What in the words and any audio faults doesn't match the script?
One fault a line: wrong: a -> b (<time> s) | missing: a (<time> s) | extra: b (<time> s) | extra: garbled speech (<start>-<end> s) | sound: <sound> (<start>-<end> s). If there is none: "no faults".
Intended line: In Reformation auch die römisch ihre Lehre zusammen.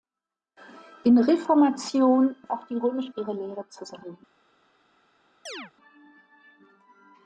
sound: chirp (5.5-5.7 s)